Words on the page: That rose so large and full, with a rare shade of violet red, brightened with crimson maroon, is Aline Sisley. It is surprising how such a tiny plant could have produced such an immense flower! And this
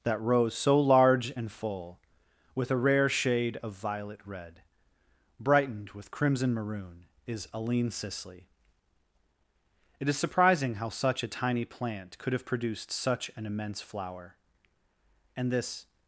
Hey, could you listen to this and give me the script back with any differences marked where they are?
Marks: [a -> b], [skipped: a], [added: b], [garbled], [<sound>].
That rose so large and full, with a rare shade of violet red, brightened with crimson maroon, is Aline Sisley. It is surprising how such a tiny plant could have produced such an immense flower! And this